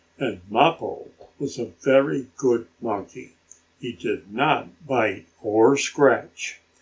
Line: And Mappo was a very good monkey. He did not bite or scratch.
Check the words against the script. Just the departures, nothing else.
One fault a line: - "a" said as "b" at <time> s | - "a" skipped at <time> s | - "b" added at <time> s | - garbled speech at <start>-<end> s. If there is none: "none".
none